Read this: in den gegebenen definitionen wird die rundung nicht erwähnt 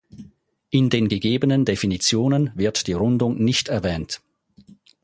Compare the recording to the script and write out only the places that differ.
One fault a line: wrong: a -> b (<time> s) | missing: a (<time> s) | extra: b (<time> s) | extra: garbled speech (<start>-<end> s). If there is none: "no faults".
no faults